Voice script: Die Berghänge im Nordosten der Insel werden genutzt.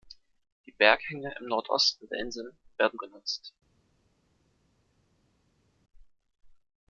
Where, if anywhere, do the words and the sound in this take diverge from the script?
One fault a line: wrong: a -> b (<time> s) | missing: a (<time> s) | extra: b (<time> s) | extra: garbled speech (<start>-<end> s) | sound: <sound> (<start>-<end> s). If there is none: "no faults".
no faults